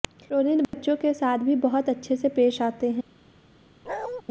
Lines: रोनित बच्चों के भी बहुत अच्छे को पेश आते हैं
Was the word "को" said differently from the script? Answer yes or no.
yes